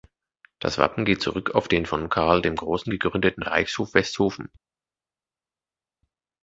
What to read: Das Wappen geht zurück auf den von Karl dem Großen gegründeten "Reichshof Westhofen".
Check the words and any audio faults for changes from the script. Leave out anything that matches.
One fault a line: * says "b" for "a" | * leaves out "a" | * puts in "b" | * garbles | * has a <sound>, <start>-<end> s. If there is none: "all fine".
all fine